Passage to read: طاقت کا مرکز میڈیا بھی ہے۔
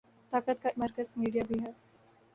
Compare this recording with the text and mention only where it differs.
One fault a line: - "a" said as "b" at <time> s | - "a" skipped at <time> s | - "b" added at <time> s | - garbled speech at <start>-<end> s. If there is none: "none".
none